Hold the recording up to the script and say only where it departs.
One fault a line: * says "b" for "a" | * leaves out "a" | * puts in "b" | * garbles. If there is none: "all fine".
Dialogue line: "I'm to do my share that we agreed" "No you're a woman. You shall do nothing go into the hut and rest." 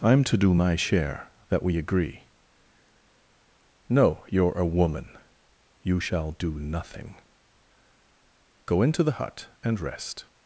* says "agree" for "agreed"